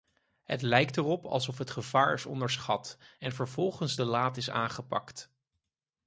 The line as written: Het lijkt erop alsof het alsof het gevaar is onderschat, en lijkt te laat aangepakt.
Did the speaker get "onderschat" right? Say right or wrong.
right